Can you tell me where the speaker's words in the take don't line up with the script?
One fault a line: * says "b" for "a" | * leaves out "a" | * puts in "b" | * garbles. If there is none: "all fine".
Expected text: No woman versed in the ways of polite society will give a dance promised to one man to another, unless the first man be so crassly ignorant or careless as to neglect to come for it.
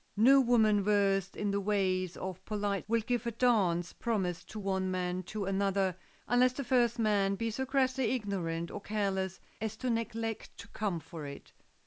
* leaves out "society"